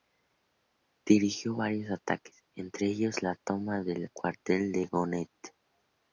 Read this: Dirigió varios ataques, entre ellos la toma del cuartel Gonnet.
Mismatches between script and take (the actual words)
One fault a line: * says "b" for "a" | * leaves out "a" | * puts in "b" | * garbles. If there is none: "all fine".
* puts in "de"